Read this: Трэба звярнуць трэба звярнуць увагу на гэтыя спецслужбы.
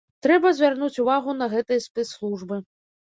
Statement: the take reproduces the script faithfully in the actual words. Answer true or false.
false